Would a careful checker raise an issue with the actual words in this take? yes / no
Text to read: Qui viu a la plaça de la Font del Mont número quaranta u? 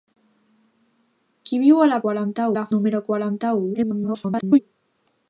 yes